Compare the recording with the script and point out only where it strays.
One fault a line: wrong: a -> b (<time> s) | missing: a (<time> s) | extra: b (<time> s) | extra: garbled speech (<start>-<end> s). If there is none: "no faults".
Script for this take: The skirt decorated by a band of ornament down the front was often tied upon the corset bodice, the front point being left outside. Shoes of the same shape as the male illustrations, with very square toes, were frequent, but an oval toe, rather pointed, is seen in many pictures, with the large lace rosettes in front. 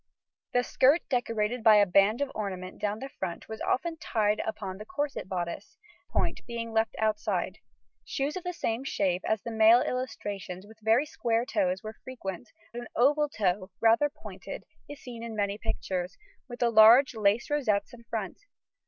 missing: the front (5.8 s)
missing: but (12.5 s)